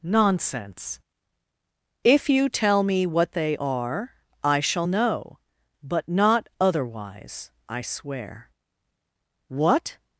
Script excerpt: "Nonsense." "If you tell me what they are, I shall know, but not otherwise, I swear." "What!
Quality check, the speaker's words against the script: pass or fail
pass